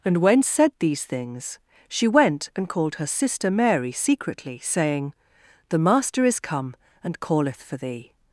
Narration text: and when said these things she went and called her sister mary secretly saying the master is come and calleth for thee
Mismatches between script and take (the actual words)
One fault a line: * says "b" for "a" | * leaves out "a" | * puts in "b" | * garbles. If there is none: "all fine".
all fine